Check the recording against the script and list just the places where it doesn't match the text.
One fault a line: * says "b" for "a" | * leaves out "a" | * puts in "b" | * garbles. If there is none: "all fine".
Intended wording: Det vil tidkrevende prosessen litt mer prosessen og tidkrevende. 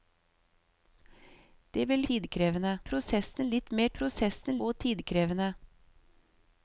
all fine